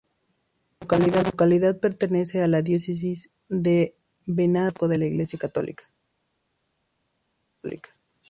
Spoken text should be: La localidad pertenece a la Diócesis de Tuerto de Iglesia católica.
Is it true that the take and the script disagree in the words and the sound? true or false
true